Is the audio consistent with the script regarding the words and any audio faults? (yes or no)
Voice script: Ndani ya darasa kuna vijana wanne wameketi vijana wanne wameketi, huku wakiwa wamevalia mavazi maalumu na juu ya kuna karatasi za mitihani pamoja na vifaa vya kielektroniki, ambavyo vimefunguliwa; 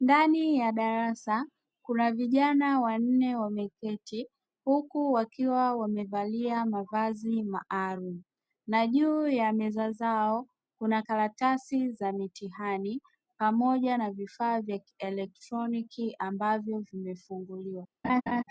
no